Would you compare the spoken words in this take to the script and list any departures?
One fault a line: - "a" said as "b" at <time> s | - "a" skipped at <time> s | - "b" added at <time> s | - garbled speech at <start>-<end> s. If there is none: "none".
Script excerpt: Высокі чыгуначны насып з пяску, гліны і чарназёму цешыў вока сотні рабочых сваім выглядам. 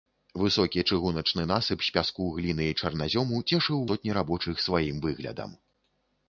- "вока" skipped at 3.9 s